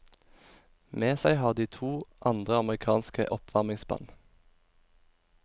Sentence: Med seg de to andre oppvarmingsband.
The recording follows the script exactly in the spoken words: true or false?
false